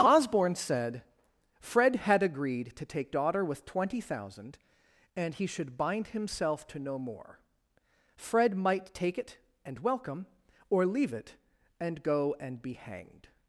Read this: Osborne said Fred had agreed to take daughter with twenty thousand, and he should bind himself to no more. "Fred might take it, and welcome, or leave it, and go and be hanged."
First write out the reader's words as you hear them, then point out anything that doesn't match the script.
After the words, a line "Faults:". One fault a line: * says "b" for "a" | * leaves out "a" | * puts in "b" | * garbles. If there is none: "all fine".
Osborne said Fred had agreed to take daughter with twenty thousand, and he should bind himself to no more. "Fred might take it, and welcome, or leave it, and go and be hanged."
Faults:
all fine